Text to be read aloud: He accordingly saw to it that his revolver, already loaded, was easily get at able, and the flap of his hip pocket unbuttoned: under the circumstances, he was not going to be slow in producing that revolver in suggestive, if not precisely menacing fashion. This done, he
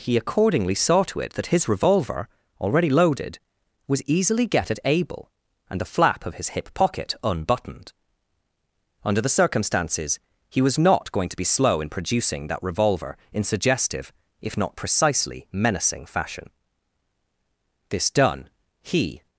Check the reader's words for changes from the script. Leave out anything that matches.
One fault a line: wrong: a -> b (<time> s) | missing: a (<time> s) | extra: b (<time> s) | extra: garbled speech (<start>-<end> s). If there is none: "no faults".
no faults